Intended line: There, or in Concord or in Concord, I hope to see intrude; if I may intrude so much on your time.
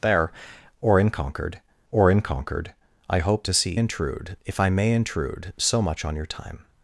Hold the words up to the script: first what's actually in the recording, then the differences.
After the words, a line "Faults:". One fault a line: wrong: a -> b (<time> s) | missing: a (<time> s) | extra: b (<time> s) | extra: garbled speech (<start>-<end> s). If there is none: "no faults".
There, or in Concord or in Concord, I hope to see intrude; if I may intrude so much on your time.
Faults:
no faults